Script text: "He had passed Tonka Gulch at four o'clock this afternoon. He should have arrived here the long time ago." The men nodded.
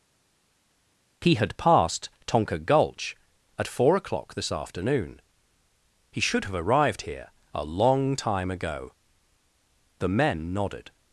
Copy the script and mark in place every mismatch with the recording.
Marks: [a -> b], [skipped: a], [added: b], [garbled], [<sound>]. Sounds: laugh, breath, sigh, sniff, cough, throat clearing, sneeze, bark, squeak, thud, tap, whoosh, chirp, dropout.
"He had passed Tonka Gulch at four o'clock this afternoon. He should have arrived here [the -> a] long time ago." The men nodded.